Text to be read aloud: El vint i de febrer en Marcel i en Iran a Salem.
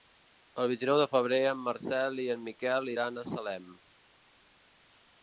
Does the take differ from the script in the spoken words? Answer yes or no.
yes